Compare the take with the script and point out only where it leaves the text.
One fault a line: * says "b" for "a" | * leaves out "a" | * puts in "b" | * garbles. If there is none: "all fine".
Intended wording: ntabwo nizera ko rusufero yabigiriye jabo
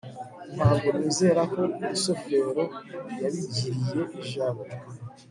all fine